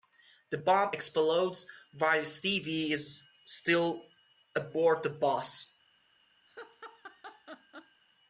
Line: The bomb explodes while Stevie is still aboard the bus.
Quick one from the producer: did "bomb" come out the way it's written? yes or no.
yes